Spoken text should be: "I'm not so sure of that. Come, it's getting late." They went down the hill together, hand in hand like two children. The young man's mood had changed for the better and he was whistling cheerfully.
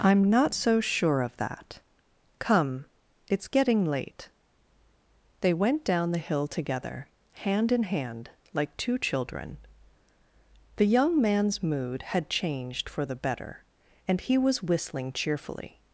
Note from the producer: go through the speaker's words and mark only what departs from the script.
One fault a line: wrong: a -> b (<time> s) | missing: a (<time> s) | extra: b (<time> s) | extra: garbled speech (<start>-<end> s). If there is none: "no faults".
no faults